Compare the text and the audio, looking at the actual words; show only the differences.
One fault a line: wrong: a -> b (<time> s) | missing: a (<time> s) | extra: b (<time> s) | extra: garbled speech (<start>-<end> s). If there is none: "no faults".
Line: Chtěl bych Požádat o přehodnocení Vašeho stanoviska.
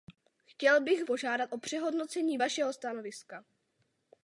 no faults